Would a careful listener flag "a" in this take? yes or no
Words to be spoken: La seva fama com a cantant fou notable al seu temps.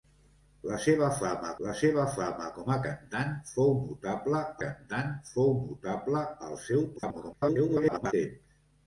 no